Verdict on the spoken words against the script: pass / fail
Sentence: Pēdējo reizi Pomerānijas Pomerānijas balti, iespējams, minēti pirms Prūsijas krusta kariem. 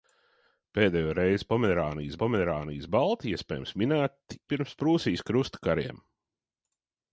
pass